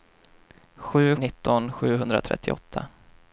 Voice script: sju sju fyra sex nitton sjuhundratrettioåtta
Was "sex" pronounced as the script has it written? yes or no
no